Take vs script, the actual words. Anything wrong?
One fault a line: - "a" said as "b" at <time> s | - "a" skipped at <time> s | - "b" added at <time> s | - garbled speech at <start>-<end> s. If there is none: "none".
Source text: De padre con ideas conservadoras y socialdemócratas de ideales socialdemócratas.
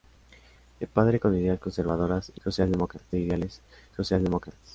none